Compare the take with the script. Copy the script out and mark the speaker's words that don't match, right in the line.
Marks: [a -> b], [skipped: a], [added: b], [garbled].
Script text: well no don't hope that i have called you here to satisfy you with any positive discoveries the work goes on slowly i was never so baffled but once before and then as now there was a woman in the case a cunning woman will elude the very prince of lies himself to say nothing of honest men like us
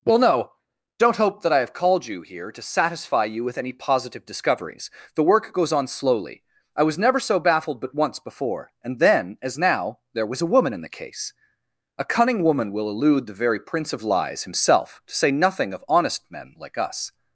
well no don't hope that i have called you here to satisfy you with any positive discoveries the work goes on slowly i was never so baffled but once before and then as now there was a woman in the case a cunning woman will elude the very prince of lies himself to say nothing of honest men like us